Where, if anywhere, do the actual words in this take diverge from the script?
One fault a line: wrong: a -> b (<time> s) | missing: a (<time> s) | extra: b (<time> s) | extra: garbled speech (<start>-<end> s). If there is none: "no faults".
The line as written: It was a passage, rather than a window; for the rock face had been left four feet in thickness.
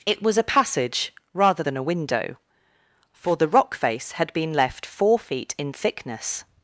no faults